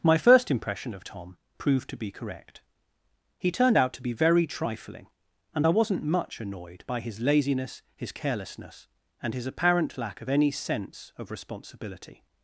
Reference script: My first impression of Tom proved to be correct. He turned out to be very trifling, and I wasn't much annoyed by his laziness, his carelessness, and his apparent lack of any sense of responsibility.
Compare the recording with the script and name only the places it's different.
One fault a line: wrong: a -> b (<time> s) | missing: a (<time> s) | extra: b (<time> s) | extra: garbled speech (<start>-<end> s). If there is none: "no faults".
no faults